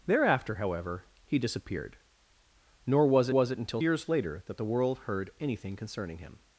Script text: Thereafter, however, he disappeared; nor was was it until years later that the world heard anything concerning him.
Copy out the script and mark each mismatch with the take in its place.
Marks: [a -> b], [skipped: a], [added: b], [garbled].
Thereafter, however, he disappeared; nor was was it until years later that the world heard anything concerning him.